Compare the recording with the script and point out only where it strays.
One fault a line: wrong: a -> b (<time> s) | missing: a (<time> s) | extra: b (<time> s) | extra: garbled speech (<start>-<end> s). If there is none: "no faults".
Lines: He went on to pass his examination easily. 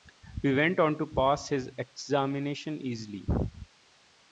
no faults